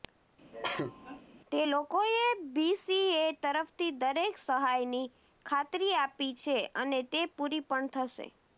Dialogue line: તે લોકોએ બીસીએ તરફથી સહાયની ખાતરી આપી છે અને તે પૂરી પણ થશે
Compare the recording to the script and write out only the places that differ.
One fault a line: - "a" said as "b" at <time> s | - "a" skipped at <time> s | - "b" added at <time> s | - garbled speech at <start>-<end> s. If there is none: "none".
- "દરેક" added at 4.0 s